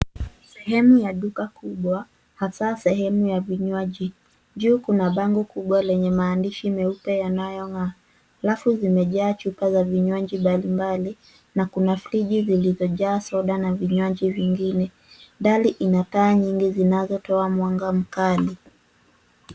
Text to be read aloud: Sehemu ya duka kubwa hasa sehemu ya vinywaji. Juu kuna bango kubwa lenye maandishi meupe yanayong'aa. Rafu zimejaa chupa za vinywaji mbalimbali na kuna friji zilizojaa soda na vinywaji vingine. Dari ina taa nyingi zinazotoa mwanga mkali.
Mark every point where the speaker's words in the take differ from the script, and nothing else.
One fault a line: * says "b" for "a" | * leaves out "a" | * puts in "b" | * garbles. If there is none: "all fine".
all fine